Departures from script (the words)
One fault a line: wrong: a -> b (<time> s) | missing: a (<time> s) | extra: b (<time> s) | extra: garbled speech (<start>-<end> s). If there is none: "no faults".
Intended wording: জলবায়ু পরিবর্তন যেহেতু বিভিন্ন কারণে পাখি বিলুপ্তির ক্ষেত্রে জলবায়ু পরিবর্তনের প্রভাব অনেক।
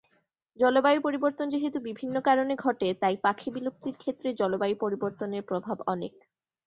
extra: ঘটে তাই (2.6 s)